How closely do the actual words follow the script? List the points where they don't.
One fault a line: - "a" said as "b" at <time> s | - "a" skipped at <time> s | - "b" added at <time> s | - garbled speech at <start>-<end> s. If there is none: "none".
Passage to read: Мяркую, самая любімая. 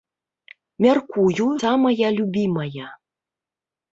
none